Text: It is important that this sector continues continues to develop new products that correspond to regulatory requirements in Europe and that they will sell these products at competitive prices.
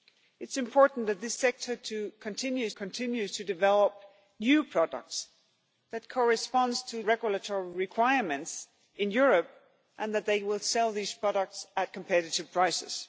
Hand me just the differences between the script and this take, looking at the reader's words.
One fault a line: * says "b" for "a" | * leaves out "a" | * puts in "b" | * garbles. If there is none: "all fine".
all fine